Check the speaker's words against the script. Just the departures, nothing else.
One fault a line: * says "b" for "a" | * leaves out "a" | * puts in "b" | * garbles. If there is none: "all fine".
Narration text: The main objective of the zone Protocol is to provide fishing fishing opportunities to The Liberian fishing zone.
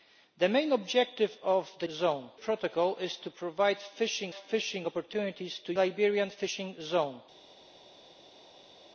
all fine